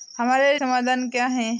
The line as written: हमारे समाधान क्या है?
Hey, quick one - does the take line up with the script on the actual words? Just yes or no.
yes